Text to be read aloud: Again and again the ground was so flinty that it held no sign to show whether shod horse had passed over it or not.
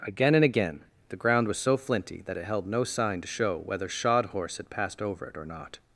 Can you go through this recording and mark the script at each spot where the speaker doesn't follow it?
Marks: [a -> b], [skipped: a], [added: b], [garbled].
Again and again the ground was so flinty that it held no sign to show whether shod horse had passed over it or not.